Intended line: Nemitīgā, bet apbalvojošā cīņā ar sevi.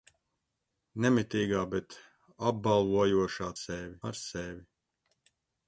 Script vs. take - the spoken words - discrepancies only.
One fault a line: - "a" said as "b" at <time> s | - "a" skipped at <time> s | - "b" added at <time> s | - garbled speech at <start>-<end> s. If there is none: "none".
- "cīņā" said as "sevi" at 3.5 s